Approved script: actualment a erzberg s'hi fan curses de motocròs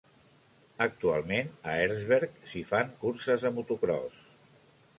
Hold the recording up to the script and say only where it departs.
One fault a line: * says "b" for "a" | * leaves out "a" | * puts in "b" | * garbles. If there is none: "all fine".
all fine